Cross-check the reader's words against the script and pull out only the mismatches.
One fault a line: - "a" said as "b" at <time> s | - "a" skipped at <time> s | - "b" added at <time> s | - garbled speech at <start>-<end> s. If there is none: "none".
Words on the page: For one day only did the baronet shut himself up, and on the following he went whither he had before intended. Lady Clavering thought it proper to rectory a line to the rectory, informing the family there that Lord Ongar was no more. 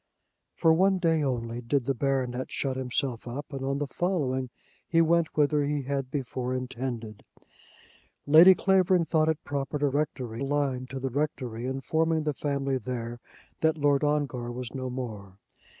none